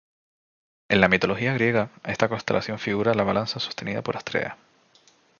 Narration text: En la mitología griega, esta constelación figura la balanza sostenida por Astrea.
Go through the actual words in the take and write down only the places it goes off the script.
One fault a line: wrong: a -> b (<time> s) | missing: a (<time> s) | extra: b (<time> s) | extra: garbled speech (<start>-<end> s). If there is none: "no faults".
no faults